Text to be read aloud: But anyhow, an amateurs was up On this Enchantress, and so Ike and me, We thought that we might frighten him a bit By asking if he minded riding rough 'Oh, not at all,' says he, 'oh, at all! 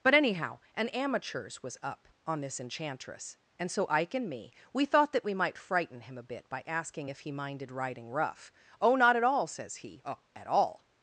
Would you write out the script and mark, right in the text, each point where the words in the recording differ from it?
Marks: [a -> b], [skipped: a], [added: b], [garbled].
But anyhow, an amateurs was up On this Enchantress, and so Ike and me, We thought that we might frighten him a bit By asking if he minded riding rough 'Oh, not at all,' says he, 'oh, at all!